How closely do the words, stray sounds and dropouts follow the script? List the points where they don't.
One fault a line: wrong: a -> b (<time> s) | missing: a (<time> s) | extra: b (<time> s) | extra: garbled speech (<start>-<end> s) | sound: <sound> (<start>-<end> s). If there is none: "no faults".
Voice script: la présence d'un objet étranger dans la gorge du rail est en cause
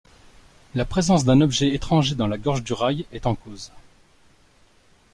no faults